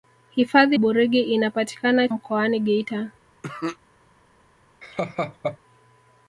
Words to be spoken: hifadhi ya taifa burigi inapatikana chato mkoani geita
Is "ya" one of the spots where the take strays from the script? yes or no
yes